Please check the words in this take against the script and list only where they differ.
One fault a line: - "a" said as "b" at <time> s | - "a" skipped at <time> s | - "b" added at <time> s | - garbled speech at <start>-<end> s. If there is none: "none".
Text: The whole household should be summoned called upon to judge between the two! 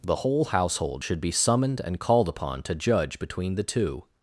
- "and" added at 1.8 s